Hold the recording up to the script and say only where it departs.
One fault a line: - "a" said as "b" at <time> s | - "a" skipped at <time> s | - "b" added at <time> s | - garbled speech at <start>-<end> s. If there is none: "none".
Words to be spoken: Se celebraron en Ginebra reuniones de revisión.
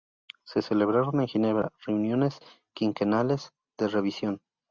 - "quinquenales" added at 2.7 s